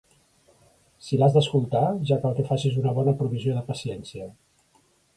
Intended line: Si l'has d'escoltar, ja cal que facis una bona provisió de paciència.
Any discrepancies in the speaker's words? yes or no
no